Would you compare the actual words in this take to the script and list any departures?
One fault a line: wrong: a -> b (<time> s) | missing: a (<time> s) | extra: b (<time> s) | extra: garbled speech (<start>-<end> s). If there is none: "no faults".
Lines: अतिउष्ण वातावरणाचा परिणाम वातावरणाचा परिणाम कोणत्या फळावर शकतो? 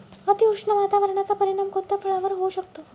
missing: वातावरणाचा परिणाम (1.7 s)
extra: होऊ (2.3 s)